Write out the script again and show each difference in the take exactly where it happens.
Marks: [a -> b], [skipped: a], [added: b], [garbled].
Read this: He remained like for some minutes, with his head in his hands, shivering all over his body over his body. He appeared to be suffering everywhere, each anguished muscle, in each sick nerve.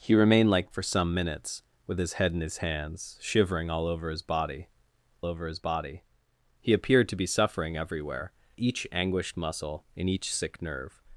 He remained like for some minutes, with his head in his hands, shivering all over his body over his body. He appeared to be suffering everywhere, each anguished muscle, in each sick nerve.